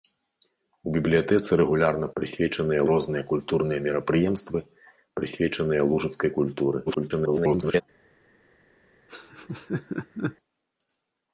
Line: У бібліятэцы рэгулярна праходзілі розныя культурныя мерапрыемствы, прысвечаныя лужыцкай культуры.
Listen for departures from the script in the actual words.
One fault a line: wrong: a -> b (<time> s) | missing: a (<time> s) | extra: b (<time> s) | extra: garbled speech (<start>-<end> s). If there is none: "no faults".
wrong: праходзілі -> прысвечаныя (2.2 s)
extra: garbled speech (6.9-7.8 s)